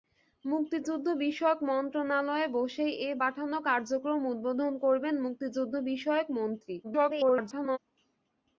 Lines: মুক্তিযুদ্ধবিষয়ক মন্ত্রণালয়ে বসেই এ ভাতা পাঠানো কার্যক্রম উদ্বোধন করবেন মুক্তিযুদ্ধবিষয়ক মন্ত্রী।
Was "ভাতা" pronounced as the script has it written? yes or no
no